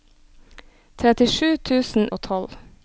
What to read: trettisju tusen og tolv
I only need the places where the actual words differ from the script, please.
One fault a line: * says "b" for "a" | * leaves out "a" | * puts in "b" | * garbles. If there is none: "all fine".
all fine